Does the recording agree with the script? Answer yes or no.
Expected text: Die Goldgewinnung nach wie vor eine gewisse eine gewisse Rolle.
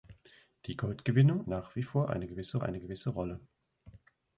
yes